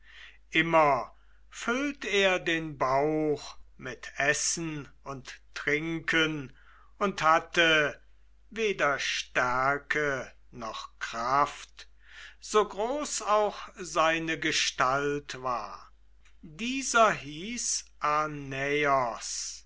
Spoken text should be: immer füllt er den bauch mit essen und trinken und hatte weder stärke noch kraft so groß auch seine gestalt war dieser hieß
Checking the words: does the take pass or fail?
pass